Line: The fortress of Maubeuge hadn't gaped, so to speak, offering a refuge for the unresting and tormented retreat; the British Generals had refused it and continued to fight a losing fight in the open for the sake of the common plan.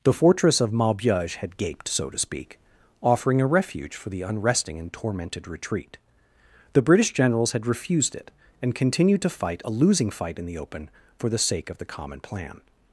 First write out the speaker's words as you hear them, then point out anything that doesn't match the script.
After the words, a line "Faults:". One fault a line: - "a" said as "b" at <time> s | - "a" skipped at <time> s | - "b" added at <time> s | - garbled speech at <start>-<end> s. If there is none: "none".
The fortress of Maubeuge had gaped, so to speak, offering a refuge for the unresting and tormented retreat; the British Generals had refused it and continued to fight a losing fight in the open for the sake of the common plan.
Faults:
- "hadn't" said as "had" at 1.4 s